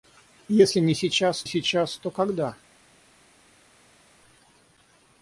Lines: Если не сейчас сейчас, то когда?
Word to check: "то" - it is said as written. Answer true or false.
true